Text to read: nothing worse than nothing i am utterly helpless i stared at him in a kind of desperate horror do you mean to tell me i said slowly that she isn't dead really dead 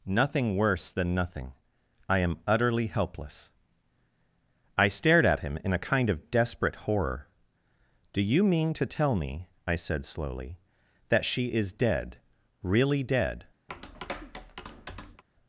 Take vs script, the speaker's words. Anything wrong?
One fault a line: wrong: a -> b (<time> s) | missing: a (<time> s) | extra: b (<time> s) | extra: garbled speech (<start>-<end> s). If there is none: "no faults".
wrong: isn't -> is (11.5 s)